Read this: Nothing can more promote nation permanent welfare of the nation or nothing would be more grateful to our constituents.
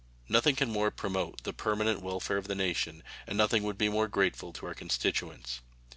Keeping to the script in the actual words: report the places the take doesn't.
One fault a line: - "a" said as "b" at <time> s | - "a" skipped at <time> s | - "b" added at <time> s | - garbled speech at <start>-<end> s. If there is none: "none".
- "nation" said as "the" at 1.4 s
- "or" said as "and" at 3.3 s